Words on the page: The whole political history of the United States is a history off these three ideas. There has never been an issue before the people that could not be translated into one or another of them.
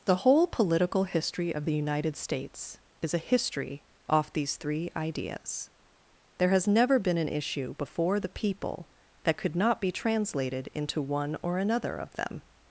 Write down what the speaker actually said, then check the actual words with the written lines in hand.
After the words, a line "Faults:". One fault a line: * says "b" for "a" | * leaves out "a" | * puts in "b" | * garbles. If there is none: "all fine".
The whole political history of the United States is a history off these three ideas. There has never been an issue before the people that could not be translated into one or another of them.
Faults:
all fine